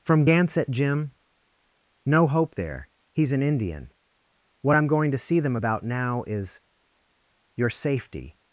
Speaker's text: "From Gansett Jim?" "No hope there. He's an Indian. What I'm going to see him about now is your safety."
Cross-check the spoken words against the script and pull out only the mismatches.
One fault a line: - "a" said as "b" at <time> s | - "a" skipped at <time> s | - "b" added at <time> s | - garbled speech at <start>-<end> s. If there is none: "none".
- "him" said as "them" at 5.4 s